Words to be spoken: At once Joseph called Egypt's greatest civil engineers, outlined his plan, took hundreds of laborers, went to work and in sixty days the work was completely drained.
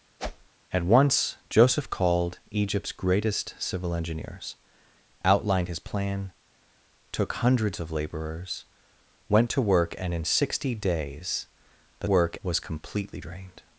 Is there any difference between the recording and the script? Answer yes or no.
no